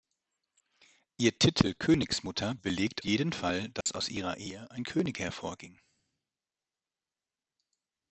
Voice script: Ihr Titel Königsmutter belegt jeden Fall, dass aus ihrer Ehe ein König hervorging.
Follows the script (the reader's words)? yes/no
yes